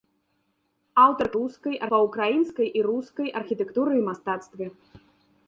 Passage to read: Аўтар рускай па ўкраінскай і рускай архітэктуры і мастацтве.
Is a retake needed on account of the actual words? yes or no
no